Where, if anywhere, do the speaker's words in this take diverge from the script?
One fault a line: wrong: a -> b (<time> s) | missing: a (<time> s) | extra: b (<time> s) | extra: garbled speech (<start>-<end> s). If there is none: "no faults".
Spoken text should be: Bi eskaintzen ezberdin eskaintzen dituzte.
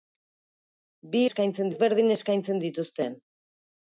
no faults